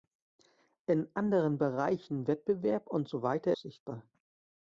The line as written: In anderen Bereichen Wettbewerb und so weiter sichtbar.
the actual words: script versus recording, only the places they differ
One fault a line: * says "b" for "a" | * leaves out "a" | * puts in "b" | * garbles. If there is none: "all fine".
all fine